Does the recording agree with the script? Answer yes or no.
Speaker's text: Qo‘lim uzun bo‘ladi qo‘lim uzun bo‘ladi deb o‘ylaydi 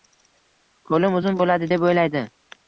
no